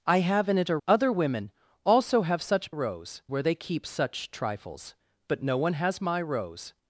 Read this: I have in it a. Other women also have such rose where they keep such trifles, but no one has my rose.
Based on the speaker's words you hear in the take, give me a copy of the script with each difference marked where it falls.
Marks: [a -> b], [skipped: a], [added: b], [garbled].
I have in it a. Other women also have such rose where they keep such trifles, but no one has my rose.